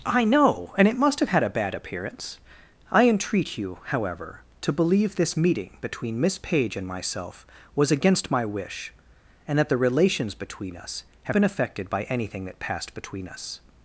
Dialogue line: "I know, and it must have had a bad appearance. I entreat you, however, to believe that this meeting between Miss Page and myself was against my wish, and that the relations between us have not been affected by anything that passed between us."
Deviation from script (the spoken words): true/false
true